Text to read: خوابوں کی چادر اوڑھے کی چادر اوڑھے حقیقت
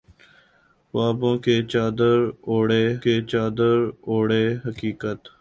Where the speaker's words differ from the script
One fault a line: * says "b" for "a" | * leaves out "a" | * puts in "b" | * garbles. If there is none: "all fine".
all fine